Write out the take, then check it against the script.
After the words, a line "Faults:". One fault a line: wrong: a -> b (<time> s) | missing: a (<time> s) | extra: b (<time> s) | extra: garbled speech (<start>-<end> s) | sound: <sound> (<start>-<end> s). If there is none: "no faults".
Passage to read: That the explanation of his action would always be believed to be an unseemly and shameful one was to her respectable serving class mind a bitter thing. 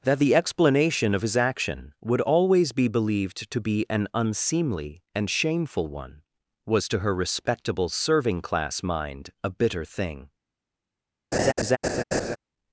That the explanation of his action would always be believed to be an unseemly and shameful one was to her respectable serving class mind a bitter thing.
Faults:
sound: laugh (11.3-12.4 s)